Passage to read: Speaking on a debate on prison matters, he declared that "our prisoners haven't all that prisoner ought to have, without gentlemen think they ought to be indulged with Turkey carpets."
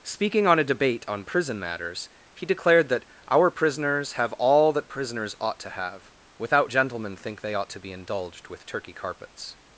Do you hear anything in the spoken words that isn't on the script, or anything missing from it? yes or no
yes